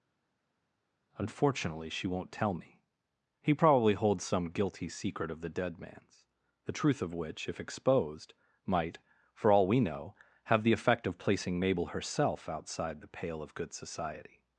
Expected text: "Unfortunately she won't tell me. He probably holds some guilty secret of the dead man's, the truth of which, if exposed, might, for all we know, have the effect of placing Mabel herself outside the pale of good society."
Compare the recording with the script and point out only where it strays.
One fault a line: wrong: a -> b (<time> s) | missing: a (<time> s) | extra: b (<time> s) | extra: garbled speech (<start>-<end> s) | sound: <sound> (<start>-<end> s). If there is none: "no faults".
no faults